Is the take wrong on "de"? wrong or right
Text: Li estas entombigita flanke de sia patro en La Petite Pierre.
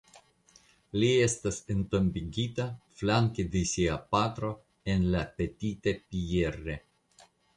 right